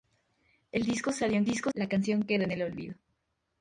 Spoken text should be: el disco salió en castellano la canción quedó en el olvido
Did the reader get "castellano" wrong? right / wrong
wrong